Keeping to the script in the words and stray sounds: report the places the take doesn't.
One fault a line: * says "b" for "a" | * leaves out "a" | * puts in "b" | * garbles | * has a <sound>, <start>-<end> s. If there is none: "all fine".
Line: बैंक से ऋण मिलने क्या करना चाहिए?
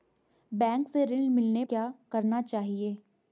all fine